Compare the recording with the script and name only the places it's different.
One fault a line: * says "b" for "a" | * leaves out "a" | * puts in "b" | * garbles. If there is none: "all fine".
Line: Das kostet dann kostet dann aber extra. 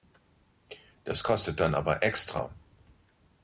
* leaves out "kostet dann"